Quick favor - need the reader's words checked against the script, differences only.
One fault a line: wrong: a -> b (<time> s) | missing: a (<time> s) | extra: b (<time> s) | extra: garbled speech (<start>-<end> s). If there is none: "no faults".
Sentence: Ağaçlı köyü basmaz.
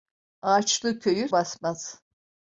no faults